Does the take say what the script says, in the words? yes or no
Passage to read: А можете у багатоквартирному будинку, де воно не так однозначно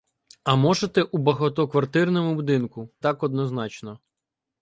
no